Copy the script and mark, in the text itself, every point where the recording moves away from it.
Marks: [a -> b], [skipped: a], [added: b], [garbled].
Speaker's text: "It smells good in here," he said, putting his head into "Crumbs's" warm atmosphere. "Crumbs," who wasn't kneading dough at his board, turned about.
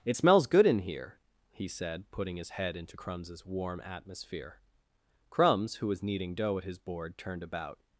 "It smells good in here," he said, putting his head into "Crumbs's" warm atmosphere. "Crumbs," who [wasn't -> was] kneading dough at his board, turned about.